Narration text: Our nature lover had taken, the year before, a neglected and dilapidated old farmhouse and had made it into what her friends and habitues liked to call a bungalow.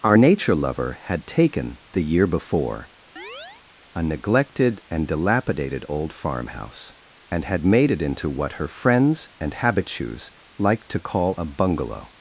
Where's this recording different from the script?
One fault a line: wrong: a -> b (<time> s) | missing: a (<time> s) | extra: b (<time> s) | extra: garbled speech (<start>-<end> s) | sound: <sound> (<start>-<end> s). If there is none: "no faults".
sound: chirp (3.2-3.7 s)